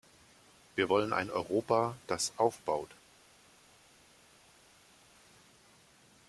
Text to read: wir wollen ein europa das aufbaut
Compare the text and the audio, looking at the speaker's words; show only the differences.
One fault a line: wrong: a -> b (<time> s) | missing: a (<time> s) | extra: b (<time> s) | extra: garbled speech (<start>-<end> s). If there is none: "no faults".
no faults